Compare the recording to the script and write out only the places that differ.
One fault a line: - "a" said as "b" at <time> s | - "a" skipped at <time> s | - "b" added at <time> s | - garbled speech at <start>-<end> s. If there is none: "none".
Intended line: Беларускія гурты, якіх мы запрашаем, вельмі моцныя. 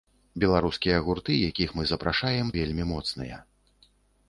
none